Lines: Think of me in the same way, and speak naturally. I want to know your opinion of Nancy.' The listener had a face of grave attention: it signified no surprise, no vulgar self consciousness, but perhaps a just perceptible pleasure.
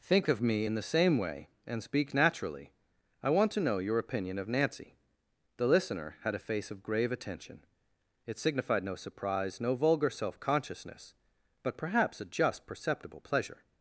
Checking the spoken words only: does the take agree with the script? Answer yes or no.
yes